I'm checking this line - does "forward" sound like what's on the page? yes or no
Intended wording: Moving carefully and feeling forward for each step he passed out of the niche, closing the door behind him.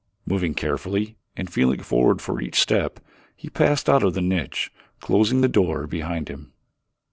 yes